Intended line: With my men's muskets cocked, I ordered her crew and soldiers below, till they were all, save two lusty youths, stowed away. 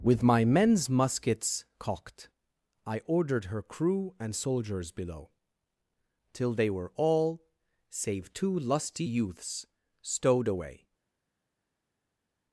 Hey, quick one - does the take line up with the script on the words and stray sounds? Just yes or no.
yes